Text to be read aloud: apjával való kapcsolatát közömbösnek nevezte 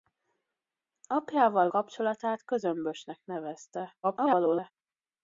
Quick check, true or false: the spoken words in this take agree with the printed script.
false